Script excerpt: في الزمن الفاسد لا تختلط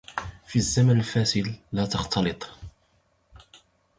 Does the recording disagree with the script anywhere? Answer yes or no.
no